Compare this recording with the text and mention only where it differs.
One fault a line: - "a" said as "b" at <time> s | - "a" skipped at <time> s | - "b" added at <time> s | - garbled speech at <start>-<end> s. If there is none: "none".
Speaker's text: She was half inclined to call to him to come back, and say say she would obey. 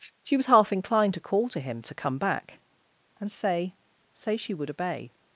none